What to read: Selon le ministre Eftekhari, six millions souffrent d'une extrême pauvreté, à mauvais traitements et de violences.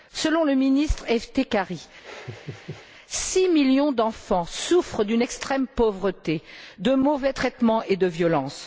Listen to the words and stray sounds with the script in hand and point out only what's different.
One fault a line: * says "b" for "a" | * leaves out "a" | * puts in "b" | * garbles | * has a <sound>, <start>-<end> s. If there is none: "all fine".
* has a laugh, 2.0-2.9 s
* puts in "d'enfants"
* says "de" for "à"